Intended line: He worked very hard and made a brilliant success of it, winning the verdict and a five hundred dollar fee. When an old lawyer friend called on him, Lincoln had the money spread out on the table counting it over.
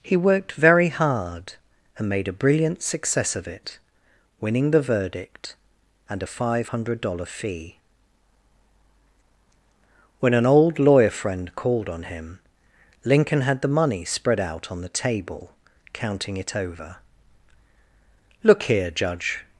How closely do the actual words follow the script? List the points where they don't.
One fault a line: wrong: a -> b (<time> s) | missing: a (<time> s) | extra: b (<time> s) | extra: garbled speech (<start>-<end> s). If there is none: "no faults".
extra: Look here judge (18.4 s)